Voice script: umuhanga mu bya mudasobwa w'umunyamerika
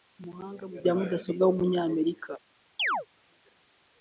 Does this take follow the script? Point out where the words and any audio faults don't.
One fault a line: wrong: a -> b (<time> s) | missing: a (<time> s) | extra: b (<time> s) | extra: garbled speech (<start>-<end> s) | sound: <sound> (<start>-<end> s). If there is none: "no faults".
sound: chirp (2.8-3.1 s)